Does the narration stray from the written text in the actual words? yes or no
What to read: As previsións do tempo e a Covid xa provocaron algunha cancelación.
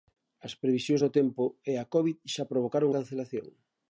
yes